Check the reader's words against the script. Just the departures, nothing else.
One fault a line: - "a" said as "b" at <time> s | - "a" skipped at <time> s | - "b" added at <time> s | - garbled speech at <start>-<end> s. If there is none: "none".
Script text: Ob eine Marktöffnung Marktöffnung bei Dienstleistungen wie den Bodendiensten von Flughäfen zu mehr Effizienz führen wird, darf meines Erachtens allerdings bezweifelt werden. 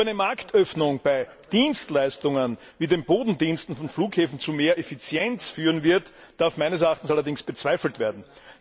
- "Marktöffnung" skipped at 1.0 s